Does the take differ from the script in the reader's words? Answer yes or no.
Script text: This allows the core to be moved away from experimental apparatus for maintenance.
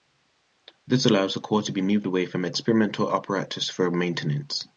no